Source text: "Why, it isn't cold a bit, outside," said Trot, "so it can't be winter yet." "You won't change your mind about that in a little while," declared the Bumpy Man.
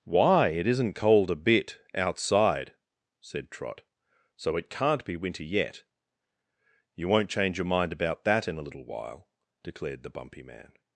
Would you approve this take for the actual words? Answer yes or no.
yes